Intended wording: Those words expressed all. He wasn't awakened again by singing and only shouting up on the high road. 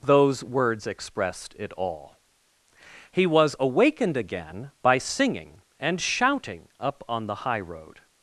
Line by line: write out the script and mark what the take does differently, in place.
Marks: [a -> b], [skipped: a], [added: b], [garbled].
Those words expressed [added: it] all. He [wasn't -> was] awakened again by singing and [skipped: only] shouting up on the high road.